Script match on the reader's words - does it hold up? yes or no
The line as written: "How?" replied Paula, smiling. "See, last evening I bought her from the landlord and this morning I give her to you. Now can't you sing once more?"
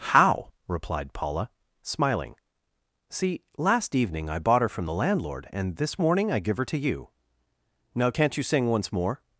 yes